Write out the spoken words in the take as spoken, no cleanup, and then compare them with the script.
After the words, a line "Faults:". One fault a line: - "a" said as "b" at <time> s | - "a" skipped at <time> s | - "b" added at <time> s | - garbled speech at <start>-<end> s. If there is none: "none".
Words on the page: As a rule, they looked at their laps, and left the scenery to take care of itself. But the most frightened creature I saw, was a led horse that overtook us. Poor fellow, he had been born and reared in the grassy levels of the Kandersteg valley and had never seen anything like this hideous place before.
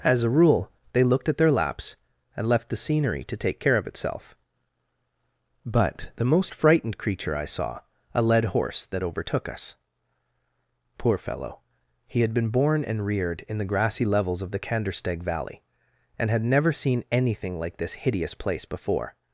As a rule, they looked at their laps, and left the scenery to take care of itself. But the most frightened creature I saw, a led horse that overtook us. Poor fellow, he had been born and reared in the grassy levels of the Kandersteg valley and had never seen anything like this hideous place before.
Faults:
- "was" skipped at 7.8 s